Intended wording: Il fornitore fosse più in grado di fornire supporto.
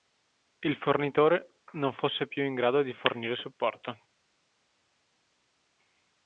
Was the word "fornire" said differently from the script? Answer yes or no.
no